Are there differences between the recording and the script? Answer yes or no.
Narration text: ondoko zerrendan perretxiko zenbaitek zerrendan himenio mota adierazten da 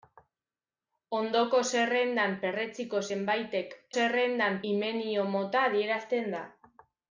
no